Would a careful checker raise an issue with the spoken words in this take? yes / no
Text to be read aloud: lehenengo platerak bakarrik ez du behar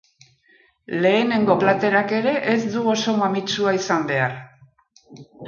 yes